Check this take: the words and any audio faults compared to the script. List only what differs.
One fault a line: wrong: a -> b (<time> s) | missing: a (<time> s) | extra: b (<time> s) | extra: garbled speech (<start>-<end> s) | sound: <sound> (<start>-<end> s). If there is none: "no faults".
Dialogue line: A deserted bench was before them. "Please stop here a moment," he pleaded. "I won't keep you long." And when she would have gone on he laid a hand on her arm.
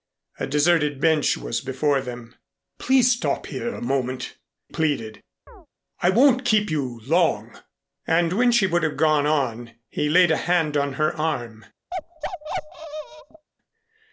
missing: he (4.3 s)
sound: chirp (5.5-5.7 s)
sound: bark (11.9-13.5 s)